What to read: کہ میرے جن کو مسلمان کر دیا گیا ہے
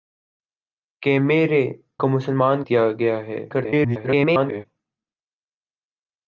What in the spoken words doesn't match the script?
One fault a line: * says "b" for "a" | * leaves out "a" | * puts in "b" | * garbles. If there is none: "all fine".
* leaves out "جن"
* leaves out "کر"
* garbles